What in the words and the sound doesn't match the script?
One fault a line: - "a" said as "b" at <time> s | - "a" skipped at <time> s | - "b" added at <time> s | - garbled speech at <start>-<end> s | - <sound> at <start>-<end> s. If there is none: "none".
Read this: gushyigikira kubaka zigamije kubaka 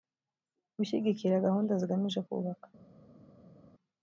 - "kubaka" said as "gahunda" at 1.4 s